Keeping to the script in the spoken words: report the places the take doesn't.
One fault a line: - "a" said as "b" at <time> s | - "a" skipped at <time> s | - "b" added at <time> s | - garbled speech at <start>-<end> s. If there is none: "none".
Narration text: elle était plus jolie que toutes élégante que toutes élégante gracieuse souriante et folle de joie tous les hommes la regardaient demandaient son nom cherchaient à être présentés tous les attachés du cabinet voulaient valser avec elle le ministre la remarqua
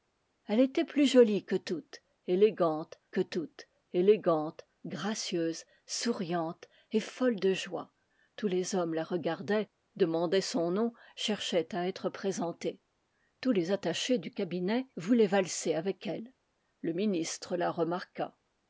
none